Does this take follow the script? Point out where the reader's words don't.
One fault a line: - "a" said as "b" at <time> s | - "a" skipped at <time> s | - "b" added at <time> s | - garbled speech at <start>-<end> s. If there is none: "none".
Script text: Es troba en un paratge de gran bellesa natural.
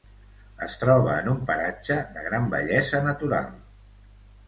none